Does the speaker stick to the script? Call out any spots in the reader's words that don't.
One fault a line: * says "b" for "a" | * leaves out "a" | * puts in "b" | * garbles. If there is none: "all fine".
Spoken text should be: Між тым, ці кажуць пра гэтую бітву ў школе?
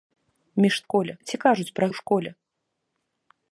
* says "школе" for "тым"
* leaves out "гэтую бітву"